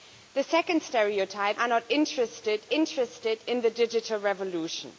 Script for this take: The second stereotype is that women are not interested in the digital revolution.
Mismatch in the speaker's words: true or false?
true